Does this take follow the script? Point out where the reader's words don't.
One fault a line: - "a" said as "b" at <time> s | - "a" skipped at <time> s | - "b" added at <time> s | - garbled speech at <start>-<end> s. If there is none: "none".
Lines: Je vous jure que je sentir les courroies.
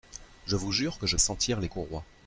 none